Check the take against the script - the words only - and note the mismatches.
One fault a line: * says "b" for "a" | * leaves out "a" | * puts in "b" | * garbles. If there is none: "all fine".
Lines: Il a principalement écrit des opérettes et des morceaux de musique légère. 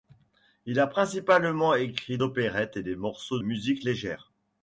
* leaves out "des"
* leaves out "de"